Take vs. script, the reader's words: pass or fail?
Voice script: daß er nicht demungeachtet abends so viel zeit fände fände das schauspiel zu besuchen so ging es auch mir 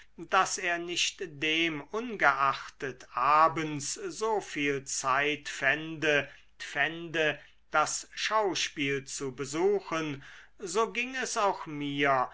pass